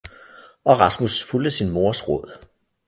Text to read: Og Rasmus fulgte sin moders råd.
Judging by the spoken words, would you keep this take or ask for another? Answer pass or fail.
pass